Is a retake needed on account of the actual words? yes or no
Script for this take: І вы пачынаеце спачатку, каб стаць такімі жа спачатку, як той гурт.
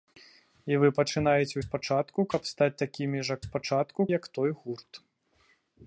no